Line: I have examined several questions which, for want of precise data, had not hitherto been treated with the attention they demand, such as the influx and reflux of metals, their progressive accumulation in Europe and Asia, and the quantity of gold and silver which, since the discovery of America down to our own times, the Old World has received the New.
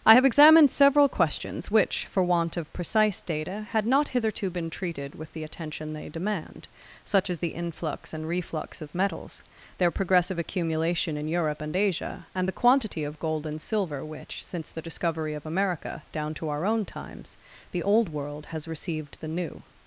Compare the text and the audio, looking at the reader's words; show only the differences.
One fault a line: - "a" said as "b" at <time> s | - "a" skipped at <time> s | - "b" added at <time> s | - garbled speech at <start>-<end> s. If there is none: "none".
none